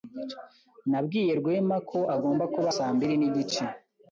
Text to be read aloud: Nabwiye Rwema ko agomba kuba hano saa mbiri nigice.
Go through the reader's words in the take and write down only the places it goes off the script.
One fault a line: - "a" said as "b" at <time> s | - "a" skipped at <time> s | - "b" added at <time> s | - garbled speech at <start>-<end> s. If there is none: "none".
- "hano" skipped at 2.7 s